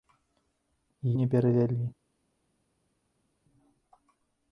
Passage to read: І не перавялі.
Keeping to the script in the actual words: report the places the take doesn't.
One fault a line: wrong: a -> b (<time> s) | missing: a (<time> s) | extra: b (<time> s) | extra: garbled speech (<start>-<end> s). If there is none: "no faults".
no faults